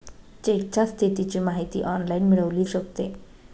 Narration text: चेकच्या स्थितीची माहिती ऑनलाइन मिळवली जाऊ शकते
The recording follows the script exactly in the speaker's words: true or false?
false